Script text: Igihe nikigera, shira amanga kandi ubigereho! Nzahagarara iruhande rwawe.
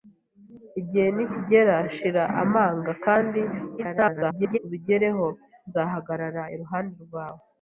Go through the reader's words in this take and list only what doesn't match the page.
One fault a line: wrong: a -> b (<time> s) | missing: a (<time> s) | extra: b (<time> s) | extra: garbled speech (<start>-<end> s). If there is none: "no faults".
extra: garbled speech (3.8-4.6 s)